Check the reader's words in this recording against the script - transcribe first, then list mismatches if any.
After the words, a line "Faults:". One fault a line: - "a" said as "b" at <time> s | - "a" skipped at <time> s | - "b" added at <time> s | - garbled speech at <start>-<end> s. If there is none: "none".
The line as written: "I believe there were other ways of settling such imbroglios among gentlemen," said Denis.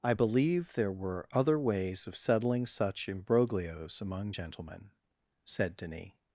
"I believe there were other ways of settling such imbroglios among gentlemen," said Denis.
Faults:
none